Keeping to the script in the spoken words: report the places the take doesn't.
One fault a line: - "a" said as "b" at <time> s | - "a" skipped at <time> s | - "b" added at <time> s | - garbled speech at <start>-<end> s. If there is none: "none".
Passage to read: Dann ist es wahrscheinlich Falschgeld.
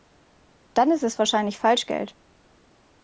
none